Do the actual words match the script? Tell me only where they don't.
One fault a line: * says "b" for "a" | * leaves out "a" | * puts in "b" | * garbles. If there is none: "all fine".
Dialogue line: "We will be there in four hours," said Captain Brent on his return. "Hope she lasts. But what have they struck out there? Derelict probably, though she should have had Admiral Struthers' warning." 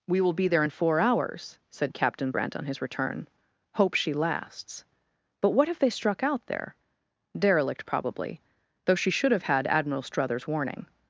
all fine